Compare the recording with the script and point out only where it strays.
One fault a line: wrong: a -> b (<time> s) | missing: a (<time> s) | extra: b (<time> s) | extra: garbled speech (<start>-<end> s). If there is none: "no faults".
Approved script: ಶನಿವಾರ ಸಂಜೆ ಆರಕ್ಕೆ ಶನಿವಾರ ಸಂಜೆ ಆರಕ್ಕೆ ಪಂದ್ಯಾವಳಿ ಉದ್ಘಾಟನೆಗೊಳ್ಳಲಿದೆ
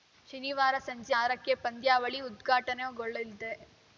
missing: ಶನಿವಾರ ಸಂಜೆ ಆರಕ್ಕೆ (1.5 s)